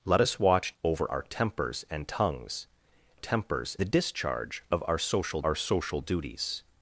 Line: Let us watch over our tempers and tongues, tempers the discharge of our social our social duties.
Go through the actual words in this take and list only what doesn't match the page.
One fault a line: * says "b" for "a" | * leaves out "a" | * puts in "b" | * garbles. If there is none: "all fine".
all fine